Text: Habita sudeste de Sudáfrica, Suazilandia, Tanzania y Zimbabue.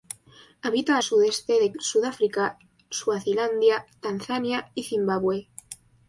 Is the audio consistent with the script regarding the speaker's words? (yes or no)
yes